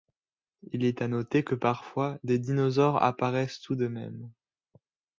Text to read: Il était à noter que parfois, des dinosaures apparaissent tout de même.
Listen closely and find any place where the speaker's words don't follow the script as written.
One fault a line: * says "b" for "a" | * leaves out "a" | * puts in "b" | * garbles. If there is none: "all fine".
* says "est" for "était"